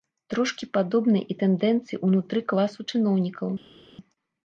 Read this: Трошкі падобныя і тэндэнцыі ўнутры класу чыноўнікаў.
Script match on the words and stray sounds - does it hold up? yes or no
yes